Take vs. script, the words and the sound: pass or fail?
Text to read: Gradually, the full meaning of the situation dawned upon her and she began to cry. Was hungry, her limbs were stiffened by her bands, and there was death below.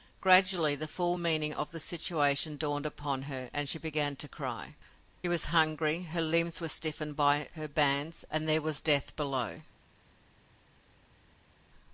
pass